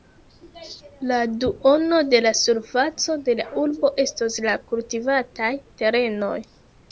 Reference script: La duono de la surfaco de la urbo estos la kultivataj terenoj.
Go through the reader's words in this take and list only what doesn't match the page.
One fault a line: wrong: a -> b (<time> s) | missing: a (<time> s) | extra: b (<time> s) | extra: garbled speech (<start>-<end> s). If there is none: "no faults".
no faults